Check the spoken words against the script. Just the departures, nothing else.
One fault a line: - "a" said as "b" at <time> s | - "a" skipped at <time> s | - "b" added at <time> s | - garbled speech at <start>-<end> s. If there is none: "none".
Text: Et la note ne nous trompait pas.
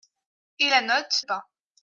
- "ne nous trompait" skipped at 1.2 s